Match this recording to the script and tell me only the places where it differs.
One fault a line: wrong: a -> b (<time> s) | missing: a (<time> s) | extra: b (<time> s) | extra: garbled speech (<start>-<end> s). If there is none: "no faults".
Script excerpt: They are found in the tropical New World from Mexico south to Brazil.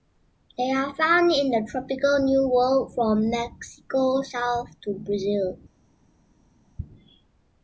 no faults